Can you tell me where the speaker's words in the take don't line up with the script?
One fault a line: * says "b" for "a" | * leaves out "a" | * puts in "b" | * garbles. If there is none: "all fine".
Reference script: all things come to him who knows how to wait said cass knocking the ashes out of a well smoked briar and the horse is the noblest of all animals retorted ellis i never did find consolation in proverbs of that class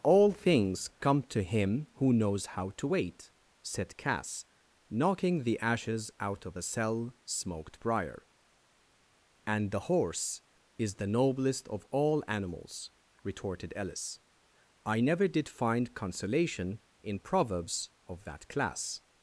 * says "cell" for "well"